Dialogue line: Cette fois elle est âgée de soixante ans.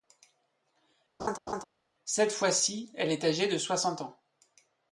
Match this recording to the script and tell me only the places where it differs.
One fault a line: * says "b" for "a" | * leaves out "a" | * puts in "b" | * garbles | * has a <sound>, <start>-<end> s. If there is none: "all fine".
* has a laugh, 1.2-1.6 s
* puts in "ci"